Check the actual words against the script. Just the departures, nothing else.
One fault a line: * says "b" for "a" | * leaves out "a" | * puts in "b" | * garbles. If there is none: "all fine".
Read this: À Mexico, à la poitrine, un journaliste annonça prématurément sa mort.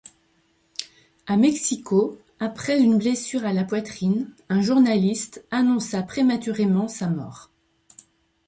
* puts in "après une blessure"